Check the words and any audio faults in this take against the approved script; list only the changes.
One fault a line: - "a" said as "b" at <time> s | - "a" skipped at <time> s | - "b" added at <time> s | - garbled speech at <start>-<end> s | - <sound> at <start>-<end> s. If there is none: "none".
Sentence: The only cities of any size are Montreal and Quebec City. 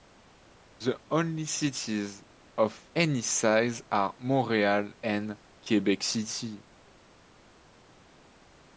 none